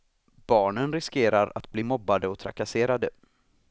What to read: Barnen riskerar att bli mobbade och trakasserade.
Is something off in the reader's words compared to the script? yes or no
no